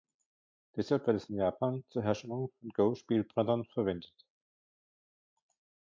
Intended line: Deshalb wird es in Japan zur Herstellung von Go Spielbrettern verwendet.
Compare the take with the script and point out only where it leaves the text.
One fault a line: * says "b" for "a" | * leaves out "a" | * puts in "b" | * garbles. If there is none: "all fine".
all fine